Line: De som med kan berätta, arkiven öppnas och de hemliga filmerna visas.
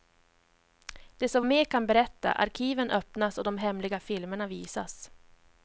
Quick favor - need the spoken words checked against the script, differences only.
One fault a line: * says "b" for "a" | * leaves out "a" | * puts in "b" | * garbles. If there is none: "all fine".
all fine